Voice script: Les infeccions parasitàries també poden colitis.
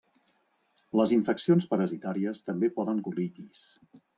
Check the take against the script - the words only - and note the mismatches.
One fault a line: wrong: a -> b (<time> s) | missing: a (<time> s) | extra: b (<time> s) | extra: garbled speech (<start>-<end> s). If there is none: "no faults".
no faults